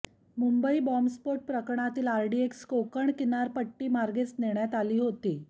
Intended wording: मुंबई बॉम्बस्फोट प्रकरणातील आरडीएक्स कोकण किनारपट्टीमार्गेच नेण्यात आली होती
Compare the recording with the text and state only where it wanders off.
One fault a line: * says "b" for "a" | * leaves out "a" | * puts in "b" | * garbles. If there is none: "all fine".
all fine